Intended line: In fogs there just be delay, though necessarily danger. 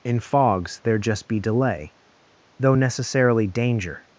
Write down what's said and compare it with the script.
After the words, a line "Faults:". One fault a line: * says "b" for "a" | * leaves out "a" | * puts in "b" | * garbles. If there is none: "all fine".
In fogs there just be delay, though necessarily danger.
Faults:
all fine